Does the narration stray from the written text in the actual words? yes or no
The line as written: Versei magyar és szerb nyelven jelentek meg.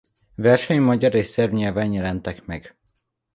no